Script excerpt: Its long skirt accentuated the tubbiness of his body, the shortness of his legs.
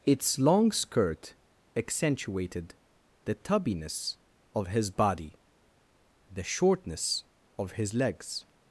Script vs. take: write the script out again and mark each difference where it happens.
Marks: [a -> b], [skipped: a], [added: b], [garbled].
Its long skirt accentuated the tubbiness of his body, the shortness of his legs.